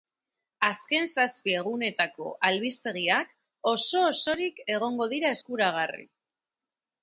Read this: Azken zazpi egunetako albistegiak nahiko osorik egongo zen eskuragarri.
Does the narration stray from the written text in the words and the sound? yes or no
yes